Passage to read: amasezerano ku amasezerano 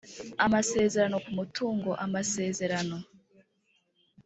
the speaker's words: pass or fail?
fail